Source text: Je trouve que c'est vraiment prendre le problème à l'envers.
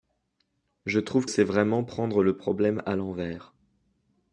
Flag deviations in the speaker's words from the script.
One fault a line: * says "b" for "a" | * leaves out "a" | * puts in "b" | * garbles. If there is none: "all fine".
* leaves out "que"